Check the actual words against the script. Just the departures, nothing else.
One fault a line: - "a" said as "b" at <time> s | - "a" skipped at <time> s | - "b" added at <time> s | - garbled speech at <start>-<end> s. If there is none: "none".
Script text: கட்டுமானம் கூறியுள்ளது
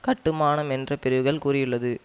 - "என்ற பிரிவுகள்" added at 0.7 s